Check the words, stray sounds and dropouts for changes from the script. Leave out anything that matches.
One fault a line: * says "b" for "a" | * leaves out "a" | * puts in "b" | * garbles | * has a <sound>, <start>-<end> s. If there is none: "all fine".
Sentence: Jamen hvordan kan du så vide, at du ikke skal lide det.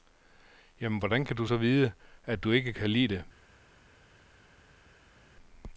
* says "kan" for "skal"